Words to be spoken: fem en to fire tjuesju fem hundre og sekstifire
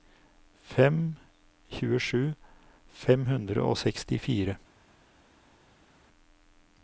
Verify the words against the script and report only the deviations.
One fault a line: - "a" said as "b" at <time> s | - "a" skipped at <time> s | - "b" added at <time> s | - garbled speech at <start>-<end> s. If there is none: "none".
- "en to fire" skipped at 1.1 s